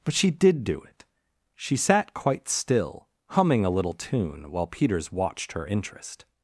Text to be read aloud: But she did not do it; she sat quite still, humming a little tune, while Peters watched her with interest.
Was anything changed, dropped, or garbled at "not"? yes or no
yes